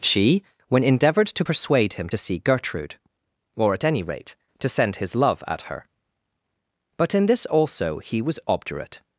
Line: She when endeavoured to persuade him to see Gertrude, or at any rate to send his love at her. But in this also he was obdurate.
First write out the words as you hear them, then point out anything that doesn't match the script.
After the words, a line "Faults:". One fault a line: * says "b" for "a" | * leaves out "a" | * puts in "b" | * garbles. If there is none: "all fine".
She when endeavoured to persuade him to see Gertrude, or at any rate to send his love at her. But in this also he was obdurate.
Faults:
all fine